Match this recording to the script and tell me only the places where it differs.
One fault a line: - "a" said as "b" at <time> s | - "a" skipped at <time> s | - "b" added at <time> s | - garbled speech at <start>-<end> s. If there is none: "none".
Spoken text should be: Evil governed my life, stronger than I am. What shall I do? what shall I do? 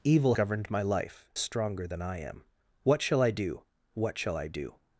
none